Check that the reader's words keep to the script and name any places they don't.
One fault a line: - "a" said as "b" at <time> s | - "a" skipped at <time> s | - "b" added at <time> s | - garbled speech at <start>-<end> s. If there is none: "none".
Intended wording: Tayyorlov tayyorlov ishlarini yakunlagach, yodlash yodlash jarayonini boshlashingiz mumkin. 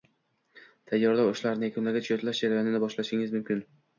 - "tayyorlov" skipped at 1.3 s
- "yodlash" skipped at 2.4 s